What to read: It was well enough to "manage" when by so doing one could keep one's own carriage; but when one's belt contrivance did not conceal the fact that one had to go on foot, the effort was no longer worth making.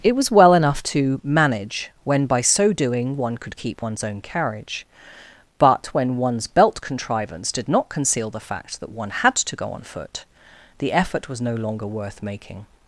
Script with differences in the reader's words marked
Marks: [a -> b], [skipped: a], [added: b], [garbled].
It was well enough to "manage" when by so doing one could keep one's own carriage; but when one's belt contrivance did not conceal the fact that one had to go on foot, the effort was no longer worth making.